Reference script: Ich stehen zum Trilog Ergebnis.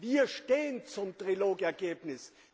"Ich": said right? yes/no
no